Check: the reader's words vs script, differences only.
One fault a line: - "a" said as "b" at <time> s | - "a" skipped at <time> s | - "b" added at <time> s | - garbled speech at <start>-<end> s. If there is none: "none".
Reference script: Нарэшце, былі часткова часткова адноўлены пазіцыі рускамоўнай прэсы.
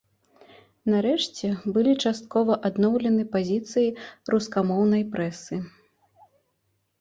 - "часткова" skipped at 2.5 s